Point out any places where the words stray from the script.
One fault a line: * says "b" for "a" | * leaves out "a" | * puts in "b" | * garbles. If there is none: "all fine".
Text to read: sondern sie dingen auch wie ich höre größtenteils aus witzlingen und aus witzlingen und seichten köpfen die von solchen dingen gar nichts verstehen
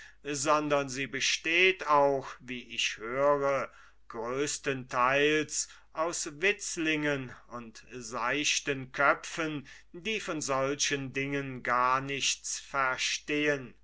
* says "besteht" for "dingen"
* leaves out "aus witzlingen und"